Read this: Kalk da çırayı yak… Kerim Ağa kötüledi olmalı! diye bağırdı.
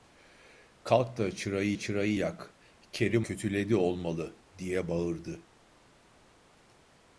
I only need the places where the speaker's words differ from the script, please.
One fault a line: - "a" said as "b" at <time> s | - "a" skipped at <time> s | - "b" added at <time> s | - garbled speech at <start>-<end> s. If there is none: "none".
- "çırayı" added at 1.7 s
- "Ağa" skipped at 3.3 s